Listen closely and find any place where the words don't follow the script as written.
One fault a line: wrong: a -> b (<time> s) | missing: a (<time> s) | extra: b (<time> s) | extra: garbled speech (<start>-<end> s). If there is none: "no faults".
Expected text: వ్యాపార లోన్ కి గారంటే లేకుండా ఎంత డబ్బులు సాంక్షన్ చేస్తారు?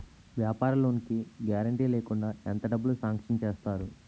no faults